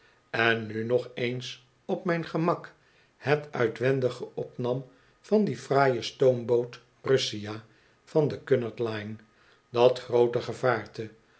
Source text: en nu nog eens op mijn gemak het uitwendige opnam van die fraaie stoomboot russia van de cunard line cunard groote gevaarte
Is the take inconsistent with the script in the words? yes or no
yes